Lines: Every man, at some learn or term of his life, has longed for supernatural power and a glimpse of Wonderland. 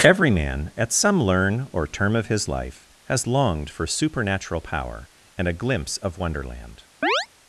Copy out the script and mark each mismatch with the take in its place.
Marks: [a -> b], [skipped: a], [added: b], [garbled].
Every man, at some learn or term of his life, has longed for supernatural power and a glimpse of Wonderland.